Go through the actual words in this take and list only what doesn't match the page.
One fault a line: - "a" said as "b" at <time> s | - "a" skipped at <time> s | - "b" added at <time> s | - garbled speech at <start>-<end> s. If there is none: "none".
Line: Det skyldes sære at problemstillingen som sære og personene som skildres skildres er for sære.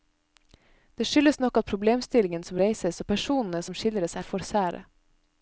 - "sære" said as "nok" at 1.4 s
- "sære" said as "reises" at 2.6 s
- "skildres" skipped at 4.2 s